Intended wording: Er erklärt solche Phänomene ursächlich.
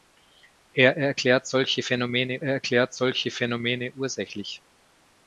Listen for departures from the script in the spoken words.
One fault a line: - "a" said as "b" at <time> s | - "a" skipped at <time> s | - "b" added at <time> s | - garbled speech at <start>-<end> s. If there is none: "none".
- "erklärt solche Phänomene" added at 2.4 s